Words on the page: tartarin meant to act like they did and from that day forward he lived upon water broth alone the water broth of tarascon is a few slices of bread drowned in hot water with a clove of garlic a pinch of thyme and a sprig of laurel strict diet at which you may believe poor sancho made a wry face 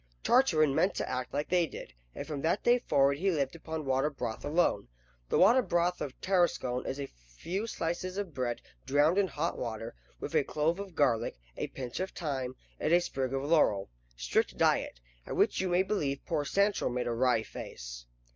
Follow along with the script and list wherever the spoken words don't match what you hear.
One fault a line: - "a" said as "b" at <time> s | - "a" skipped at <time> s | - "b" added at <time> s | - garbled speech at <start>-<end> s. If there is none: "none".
none